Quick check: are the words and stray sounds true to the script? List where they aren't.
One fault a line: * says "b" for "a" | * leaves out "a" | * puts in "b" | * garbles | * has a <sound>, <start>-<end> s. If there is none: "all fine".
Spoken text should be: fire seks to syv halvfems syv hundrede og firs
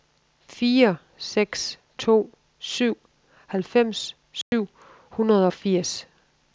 * has a dropout, 4.4-4.5 s